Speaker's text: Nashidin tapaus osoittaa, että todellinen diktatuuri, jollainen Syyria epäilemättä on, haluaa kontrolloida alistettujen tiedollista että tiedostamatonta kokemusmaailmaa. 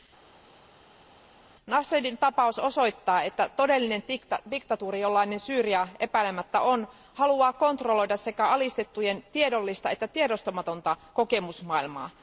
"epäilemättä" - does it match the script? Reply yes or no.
yes